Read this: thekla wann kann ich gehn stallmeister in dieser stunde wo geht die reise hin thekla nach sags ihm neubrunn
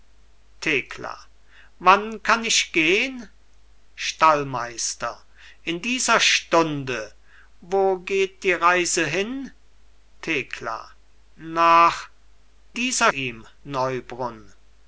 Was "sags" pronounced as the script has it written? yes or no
no